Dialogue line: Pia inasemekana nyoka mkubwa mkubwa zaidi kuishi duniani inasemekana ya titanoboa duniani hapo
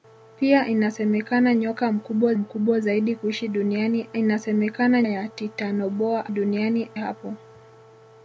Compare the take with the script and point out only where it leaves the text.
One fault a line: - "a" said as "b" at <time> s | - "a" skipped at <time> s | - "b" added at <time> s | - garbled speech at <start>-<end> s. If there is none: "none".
none